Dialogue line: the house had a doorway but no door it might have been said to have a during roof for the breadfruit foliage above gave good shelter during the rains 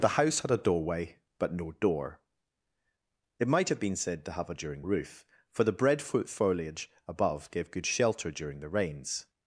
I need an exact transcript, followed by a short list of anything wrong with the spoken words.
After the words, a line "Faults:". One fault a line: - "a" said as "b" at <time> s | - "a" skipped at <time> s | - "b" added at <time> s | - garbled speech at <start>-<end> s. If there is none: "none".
the house had a doorway but no door it might have been said to have a during roof for the breadfruit foliage above gave good shelter during the rains
Faults:
none